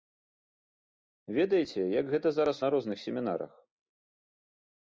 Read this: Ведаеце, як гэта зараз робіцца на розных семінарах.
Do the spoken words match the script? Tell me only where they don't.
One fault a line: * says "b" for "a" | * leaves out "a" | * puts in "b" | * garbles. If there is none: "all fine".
* leaves out "робіцца"